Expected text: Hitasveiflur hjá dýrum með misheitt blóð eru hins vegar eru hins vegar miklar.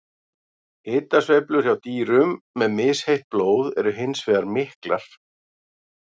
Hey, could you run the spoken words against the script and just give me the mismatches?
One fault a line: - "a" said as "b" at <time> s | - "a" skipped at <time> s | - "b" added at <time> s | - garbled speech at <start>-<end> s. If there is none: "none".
- "eru hins vegar" skipped at 4.5 s